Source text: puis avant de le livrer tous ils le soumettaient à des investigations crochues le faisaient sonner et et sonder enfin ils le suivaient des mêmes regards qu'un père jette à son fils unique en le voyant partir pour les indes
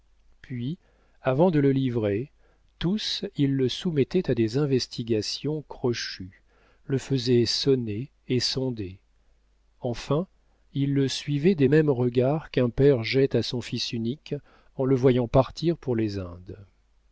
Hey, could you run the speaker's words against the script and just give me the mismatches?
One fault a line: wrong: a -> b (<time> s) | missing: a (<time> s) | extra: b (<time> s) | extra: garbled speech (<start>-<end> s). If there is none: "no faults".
missing: et (8.4 s)